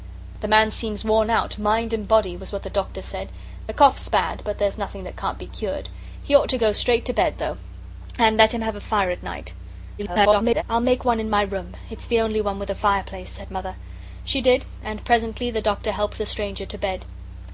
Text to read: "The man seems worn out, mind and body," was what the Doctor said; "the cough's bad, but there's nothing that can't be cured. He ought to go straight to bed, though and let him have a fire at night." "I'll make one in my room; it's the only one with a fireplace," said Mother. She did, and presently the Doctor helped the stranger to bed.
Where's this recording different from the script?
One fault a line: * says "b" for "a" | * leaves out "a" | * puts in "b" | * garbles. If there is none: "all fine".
* garbles